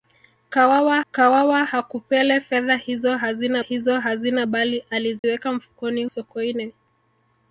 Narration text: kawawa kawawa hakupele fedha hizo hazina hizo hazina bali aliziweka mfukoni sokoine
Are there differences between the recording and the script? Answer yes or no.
no